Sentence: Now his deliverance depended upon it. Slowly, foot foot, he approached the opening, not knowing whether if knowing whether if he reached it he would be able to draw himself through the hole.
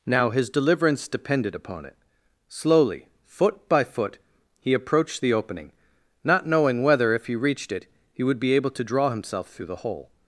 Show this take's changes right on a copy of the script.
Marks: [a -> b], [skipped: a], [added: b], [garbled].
Now his deliverance depended upon it. Slowly, foot [added: by] foot, he approached the opening, not knowing whether if [skipped: knowing whether if] he reached it he would be able to draw himself through the hole.